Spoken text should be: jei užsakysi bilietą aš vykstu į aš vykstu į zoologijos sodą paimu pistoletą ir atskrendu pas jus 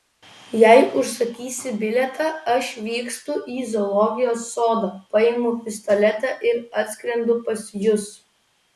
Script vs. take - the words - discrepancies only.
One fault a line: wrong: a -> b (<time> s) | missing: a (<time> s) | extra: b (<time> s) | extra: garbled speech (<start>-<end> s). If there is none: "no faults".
missing: aš vykstu į (3.7 s)